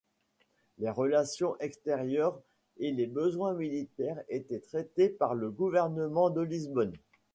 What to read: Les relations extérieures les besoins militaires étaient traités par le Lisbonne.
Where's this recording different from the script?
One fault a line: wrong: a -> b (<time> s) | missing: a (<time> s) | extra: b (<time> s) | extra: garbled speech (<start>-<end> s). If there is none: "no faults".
extra: et (2.8 s)
extra: gouvernement de (5.5 s)